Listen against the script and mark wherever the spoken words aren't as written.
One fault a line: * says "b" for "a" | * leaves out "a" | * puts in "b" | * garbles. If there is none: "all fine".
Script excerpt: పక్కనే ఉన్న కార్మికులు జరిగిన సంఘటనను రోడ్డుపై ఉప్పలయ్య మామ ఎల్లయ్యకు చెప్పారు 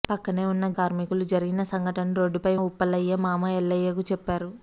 all fine